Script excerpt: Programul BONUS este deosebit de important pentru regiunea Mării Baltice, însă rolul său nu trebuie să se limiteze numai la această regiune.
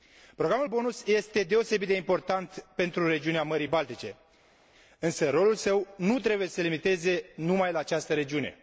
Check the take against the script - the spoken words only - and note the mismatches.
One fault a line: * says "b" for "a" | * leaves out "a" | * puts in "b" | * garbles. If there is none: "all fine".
all fine